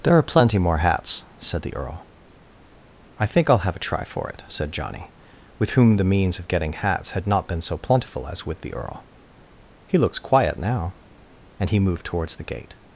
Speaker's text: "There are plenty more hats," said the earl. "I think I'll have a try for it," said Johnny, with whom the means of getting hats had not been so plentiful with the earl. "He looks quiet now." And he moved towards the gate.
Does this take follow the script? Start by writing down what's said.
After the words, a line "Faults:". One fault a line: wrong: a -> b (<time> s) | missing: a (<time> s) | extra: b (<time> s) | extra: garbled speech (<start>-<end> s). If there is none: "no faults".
"There are plenty more hats," said the earl. "I think I'll have a try for it," said Johnny, with whom the means of getting hats had not been so plentiful as with the earl. "He looks quiet now." And he moved towards the gate.
Faults:
extra: as (8.3 s)